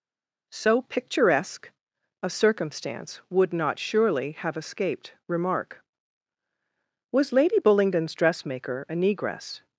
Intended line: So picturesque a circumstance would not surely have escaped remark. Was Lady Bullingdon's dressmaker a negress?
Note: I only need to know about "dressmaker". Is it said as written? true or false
true